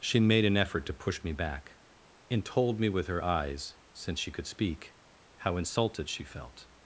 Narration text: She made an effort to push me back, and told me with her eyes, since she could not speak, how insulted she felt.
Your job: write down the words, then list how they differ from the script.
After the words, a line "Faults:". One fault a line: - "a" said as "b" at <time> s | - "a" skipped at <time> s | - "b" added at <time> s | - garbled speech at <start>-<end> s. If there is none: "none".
She made an effort to push me back, and told me with her eyes, since she could speak, how insulted she felt.
Faults:
- "not" skipped at 4.5 s